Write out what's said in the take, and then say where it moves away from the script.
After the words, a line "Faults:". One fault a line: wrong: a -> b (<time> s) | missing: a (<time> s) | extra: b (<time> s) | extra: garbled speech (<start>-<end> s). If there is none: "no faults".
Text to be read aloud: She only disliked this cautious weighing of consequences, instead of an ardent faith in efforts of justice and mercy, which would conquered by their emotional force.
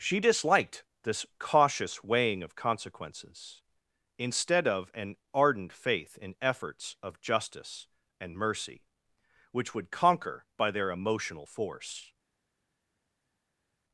She disliked this cautious weighing of consequences, instead of an ardent faith in efforts of justice and mercy, which would conquer by their emotional force.
Faults:
missing: only (0.2 s)
wrong: conquered -> conquer (9.9 s)